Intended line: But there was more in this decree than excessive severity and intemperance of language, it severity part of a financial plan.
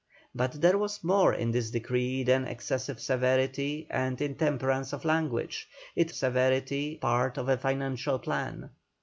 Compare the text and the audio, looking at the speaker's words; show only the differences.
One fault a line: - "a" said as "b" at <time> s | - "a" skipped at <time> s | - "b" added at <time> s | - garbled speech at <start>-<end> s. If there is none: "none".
none